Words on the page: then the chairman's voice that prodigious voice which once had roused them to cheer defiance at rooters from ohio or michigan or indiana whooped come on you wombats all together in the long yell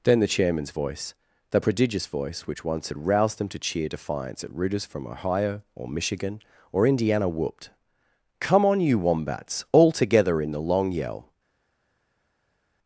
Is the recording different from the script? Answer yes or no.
yes